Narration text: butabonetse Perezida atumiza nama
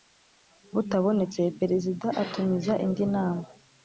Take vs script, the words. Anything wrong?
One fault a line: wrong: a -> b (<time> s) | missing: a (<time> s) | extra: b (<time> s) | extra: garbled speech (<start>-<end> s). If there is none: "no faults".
extra: indi (2.9 s)